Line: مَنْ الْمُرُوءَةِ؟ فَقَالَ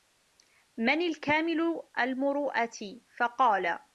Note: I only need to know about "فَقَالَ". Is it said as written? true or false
true